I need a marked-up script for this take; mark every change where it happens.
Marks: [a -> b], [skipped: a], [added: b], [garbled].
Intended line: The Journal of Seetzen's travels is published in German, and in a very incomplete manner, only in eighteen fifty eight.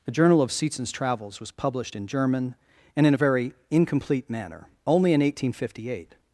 The Journal of Seetzen's travels [is -> was] published in German, and in a very incomplete manner, only in eighteen fifty eight.